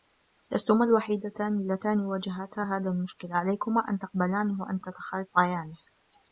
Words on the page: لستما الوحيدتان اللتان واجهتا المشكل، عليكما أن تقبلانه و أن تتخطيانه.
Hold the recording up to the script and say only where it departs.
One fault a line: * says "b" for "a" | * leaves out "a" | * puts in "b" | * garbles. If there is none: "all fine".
* puts in "هذا"